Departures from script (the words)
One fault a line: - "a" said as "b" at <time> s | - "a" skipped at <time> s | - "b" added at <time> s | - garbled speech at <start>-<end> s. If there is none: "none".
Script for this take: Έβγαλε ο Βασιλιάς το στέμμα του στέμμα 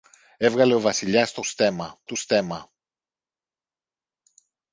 none